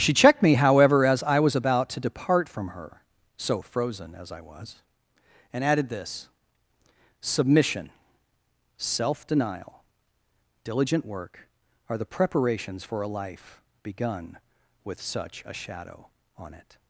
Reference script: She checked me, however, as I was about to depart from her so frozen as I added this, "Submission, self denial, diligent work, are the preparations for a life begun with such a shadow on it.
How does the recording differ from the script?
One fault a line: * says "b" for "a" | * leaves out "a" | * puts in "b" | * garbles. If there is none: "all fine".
* puts in "was and"